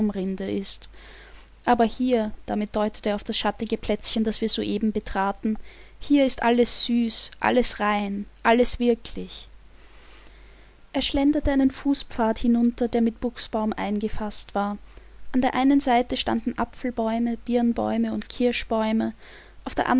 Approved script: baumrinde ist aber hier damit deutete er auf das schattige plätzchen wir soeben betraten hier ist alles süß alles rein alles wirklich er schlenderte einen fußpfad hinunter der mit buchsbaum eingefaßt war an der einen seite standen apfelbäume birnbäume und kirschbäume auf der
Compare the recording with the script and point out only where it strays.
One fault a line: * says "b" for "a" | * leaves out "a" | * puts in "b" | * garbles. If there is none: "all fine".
* puts in "das"